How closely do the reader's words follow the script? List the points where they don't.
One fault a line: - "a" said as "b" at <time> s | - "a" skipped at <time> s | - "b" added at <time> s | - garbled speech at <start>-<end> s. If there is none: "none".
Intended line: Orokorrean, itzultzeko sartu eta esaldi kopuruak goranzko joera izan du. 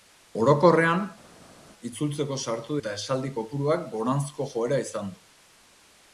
none